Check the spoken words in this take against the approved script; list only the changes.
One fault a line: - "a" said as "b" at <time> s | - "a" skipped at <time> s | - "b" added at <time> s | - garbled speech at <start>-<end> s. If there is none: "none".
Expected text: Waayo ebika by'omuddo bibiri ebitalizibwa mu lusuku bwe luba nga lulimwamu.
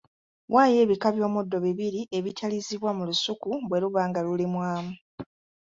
none